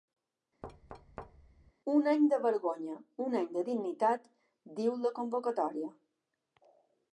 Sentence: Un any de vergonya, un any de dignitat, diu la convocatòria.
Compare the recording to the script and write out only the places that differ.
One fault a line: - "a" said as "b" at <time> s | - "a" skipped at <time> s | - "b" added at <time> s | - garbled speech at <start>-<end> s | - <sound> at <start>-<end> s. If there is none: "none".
- thud at 0.6-1.7 s